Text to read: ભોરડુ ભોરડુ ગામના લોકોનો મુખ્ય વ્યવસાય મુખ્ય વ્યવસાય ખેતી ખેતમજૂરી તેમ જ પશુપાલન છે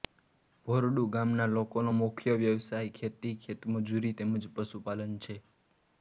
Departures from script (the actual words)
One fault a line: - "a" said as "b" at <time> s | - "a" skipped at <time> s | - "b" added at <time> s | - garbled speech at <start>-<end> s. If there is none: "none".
- "ભોરડુ" skipped at 1.0 s
- "મુખ્ય વ્યવસાય" skipped at 2.9 s